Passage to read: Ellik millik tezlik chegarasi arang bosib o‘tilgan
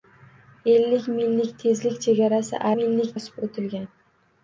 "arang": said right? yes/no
no